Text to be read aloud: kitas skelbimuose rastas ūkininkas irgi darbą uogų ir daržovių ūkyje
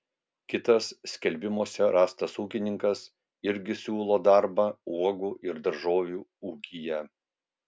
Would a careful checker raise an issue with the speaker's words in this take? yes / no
yes